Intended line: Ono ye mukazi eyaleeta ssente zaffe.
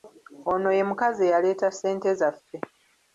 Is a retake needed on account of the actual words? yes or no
no